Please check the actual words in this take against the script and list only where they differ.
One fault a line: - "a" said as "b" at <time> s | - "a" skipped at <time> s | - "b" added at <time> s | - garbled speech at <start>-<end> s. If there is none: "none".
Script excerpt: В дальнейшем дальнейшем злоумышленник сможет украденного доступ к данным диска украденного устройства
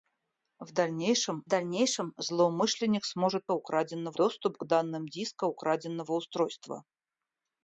none